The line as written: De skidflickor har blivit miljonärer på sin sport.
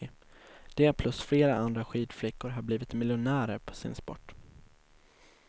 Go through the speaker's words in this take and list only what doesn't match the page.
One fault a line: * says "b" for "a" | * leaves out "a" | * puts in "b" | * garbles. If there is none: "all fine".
* puts in "plus flera andra"